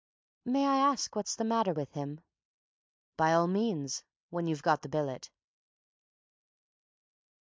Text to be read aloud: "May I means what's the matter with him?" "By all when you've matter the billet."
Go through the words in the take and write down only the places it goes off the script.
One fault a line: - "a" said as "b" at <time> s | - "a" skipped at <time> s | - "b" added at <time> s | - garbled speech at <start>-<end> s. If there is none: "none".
- "means" said as "ask" at 0.8 s
- "means" added at 3.5 s
- "matter" said as "got" at 4.6 s